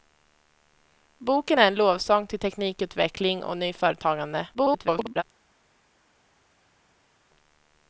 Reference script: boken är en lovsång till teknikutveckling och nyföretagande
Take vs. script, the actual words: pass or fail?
fail